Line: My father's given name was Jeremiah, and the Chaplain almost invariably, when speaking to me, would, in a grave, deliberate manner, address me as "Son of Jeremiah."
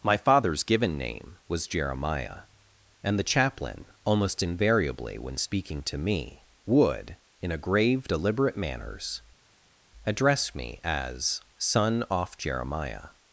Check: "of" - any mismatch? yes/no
yes